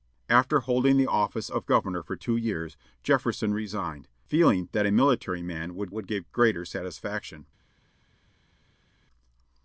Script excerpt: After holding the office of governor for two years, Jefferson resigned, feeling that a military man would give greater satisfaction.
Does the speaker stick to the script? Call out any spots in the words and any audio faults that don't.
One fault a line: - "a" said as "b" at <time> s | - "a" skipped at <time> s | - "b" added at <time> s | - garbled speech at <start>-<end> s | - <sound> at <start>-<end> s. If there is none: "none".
- "would" added at 5.9 s